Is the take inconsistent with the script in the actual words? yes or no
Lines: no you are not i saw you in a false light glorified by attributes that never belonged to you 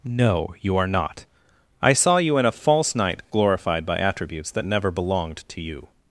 yes